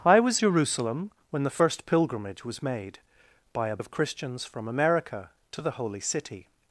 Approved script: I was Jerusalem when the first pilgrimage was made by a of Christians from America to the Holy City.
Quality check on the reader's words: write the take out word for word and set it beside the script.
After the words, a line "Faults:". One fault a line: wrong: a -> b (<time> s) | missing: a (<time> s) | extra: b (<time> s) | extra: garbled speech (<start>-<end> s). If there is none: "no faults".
I was Jerusalem when the first pilgrimage was made by a of Christians from America to the Holy City.
Faults:
no faults